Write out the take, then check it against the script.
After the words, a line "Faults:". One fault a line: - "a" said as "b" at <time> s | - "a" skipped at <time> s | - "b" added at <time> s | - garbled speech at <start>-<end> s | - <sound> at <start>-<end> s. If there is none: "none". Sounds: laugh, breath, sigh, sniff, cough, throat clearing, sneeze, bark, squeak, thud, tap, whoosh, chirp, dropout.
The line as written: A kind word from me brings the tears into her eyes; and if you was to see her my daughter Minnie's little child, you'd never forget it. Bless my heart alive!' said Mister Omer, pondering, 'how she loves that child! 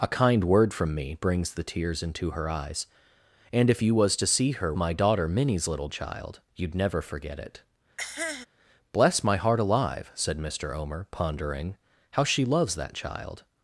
A kind word from me brings the tears into her eyes; and if you was to see her my daughter Minnie's little child, you'd never forget it. Bless my heart alive!' said Mister Omer, pondering, 'how she loves that child!
Faults:
- cough at 8.0-8.5 s